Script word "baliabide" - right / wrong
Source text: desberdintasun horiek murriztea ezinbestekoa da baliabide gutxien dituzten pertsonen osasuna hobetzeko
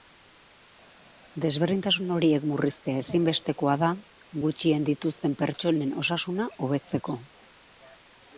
wrong